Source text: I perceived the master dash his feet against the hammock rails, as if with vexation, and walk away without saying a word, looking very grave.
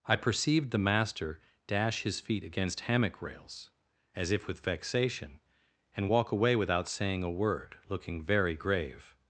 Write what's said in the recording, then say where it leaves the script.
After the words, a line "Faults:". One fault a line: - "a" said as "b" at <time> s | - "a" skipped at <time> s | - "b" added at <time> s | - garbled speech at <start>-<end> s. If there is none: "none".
I perceived the master dash his feet against hammock rails, as if with vexation, and walk away without saying a word, looking very grave.
Faults:
- "the" skipped at 2.8 s